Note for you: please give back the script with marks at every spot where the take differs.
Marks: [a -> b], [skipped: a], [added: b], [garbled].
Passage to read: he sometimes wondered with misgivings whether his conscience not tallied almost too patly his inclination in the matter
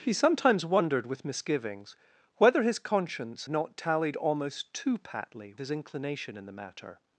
he sometimes wondered with misgivings whether his conscience not tallied almost too patly his inclination in the matter